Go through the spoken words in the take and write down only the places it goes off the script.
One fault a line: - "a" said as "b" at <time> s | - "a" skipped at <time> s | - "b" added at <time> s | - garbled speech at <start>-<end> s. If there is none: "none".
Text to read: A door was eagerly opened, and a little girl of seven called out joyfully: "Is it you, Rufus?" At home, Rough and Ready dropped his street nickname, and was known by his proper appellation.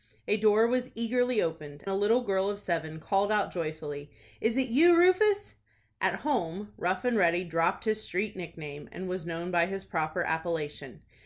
- "and" skipped at 1.9 s